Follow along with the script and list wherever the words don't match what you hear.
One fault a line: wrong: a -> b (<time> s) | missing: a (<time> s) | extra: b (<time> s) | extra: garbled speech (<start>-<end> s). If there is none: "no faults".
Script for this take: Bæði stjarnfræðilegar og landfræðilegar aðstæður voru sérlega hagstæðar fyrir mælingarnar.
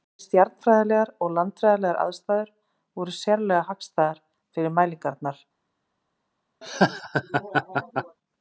no faults